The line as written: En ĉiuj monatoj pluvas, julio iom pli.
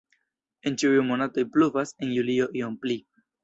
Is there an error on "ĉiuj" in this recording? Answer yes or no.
no